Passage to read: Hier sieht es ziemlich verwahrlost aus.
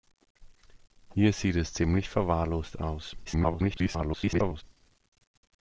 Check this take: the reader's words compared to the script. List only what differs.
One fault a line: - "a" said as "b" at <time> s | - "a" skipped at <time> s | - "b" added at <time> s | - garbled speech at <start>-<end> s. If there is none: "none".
- garbled speech at 3.2-4.6 s